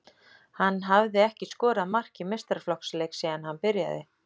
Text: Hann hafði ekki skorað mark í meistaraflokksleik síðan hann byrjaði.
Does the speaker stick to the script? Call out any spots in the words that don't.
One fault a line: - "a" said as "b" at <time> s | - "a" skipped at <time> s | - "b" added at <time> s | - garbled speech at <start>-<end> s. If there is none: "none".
none